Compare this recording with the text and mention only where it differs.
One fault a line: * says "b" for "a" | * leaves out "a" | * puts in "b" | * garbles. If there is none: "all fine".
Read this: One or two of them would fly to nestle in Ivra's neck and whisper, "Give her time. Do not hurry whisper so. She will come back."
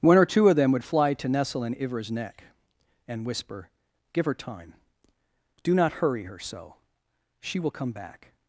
* says "her" for "whisper"